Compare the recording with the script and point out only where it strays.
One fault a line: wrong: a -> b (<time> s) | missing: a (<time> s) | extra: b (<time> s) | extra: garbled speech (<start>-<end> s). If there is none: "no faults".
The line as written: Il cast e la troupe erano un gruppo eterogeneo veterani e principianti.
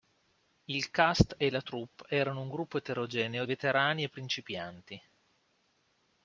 no faults